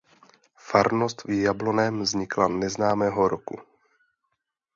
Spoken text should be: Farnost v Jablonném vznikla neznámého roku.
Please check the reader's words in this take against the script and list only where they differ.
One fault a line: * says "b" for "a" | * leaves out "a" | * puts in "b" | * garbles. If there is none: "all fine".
all fine